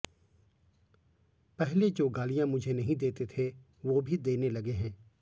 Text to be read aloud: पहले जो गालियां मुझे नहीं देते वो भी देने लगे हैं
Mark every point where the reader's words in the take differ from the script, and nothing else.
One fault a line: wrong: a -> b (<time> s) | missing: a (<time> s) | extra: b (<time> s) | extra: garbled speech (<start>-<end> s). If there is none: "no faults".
extra: थे (3.4 s)